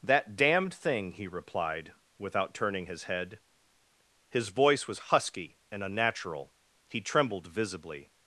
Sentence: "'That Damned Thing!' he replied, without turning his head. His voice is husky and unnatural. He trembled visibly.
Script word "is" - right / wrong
wrong